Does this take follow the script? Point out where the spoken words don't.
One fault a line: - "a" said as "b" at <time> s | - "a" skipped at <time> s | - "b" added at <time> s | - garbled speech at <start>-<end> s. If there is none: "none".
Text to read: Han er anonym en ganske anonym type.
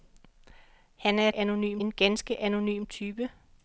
none